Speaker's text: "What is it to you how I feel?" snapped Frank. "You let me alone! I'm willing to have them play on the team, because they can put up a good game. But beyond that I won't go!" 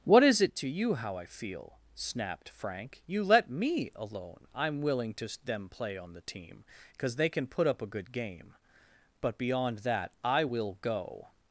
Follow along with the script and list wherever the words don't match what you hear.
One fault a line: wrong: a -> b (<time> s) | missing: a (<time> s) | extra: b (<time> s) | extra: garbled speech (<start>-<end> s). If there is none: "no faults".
missing: have (5.3 s)
wrong: won't -> will (10.4 s)